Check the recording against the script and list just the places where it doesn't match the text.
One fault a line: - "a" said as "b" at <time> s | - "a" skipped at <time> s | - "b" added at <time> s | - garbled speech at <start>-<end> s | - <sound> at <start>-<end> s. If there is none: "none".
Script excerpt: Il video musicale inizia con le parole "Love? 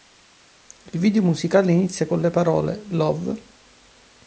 none